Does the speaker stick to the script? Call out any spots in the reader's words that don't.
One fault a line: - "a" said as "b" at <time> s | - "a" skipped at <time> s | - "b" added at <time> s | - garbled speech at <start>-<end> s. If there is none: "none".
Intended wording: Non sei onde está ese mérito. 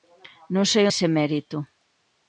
- "onde está" skipped at 0.8 s